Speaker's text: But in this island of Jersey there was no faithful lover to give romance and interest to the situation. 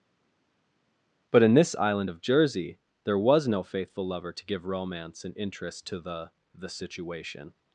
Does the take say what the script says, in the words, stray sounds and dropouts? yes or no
no